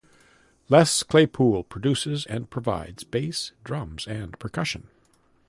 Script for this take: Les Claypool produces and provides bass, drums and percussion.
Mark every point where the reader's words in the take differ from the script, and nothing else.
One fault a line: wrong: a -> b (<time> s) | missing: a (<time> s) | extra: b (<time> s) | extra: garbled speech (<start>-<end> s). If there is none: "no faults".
no faults